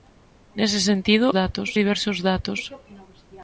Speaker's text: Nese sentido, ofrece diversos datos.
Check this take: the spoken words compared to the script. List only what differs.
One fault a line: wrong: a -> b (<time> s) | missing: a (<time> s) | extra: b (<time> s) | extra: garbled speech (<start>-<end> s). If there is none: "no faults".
wrong: ofrece -> datos (1.4 s)